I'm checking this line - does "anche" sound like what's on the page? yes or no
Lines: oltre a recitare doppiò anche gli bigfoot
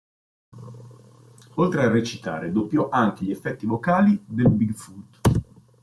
yes